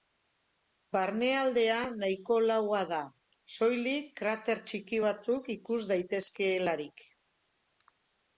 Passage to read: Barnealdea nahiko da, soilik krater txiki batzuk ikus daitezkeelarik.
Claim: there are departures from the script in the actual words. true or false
true